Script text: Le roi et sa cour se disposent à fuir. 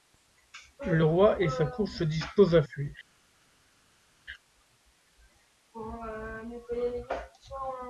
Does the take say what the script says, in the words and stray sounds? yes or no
yes